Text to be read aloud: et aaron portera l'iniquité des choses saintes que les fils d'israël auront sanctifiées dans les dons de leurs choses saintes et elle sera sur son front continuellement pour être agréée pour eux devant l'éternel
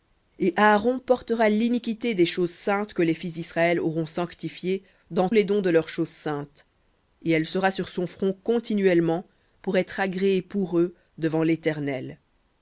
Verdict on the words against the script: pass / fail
pass